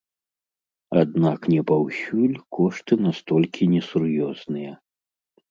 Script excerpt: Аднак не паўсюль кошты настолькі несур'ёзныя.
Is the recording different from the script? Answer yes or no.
no